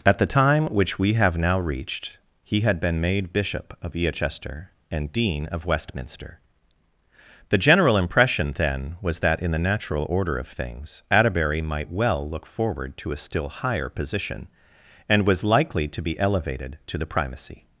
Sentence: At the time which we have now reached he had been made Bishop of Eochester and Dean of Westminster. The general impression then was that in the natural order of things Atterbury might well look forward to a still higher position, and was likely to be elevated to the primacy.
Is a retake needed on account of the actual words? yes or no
no